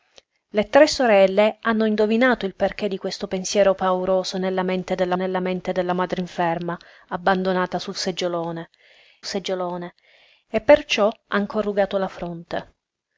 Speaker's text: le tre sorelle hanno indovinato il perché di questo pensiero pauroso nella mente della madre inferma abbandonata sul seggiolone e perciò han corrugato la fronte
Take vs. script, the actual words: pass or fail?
fail